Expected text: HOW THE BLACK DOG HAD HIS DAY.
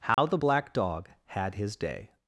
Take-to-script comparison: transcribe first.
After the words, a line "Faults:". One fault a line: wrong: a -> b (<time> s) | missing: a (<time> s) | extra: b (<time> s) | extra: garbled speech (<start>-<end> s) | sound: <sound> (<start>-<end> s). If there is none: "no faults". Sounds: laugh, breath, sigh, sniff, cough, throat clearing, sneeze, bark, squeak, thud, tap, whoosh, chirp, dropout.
HOW THE BLACK DOG HAD HIS DAY.
Faults:
sound: dropout (0.1-0.2 s)